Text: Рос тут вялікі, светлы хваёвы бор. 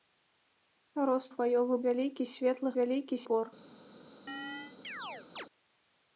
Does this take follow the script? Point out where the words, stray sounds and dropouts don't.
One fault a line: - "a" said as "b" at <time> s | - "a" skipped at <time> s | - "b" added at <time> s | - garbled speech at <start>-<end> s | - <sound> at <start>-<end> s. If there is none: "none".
- "тут" said as "хваёвы" at 1.3 s
- "хваёвы" said as "вялікі" at 2.8 s
- chirp at 4.3-5.5 s